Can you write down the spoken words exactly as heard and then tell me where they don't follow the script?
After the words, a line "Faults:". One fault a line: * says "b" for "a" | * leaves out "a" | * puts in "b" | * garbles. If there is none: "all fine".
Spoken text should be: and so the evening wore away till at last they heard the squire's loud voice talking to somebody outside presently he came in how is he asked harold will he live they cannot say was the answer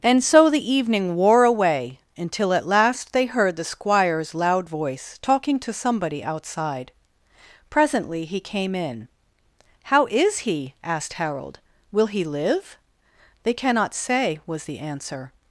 and so the evening wore away until at last they heard the squire's loud voice talking to somebody outside presently he came in how is he asked harold will he live they cannot say was the answer
Faults:
* says "until" for "till"